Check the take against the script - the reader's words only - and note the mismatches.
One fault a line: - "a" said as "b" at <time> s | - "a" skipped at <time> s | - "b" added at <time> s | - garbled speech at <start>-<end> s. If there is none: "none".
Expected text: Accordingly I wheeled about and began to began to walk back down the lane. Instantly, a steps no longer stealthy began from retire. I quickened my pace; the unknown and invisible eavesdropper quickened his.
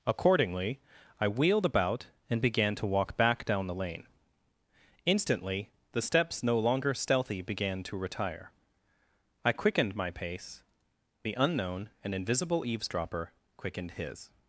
- "began to" skipped at 2.9 s
- "a" said as "the" at 5.9 s
- "from" said as "to" at 7.8 s